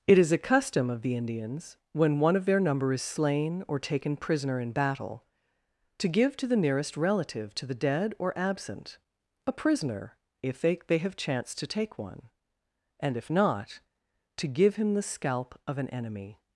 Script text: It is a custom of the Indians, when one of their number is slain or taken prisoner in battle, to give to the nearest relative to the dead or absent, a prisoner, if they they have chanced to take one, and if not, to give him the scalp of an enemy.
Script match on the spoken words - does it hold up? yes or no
yes